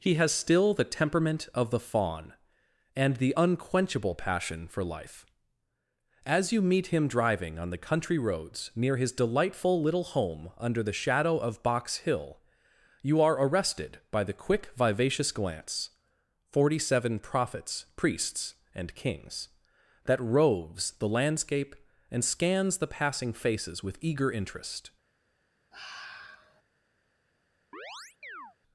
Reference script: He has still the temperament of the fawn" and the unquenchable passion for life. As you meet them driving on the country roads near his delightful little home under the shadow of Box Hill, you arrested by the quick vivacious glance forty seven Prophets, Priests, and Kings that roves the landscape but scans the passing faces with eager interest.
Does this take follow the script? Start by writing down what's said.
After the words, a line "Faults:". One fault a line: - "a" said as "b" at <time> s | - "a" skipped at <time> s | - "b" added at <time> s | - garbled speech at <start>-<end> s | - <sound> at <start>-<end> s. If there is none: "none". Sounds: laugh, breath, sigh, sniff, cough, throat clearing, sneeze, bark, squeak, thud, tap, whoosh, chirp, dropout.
He has still the temperament of the fawn" and the unquenchable passion for life. As you meet him driving on the country roads near his delightful little home under the shadow of Box Hill, you are arrested by the quick vivacious glance forty seven Prophets, Priests, and Kings that roves the landscape and scans the passing faces with eager interest.
Faults:
- "them" said as "him" at 6.9 s
- "are" added at 13.2 s
- "but" said as "and" at 22.1 s
- sigh at 25.7-26.6 s
- chirp at 27.7-28.6 s